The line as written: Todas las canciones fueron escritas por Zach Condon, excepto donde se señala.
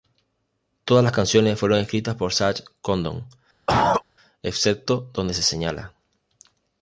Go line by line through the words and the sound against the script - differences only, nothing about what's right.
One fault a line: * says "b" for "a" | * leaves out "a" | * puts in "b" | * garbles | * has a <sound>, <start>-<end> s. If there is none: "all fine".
* has a cough, 3.7-4.0 s